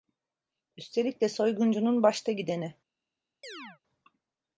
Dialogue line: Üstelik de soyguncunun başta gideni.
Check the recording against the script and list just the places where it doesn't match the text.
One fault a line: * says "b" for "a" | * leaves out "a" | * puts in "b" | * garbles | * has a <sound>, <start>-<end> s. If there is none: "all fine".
* has a chirp, 3.4-3.8 s